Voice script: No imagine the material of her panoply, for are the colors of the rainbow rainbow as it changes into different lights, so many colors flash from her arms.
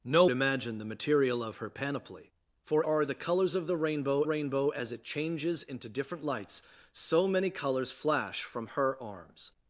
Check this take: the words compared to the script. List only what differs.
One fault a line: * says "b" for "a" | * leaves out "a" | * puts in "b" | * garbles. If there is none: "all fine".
all fine